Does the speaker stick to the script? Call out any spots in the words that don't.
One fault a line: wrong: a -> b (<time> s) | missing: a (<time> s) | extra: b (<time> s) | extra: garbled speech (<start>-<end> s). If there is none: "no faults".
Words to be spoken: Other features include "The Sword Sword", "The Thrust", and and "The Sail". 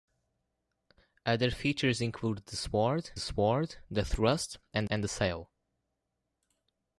no faults